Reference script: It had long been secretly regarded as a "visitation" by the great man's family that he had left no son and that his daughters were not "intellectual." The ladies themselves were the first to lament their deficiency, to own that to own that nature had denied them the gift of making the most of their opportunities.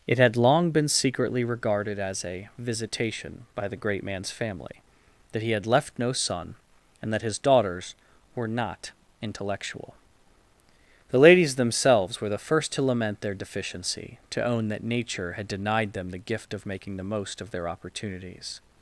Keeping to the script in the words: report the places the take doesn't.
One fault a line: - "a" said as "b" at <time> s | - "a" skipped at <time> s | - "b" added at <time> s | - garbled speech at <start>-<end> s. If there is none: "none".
- "to own that" skipped at 14.8 s